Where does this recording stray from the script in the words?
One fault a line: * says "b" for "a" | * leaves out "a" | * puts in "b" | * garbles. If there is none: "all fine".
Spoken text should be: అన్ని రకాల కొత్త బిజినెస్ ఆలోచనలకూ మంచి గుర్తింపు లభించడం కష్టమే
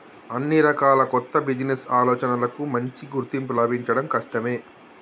all fine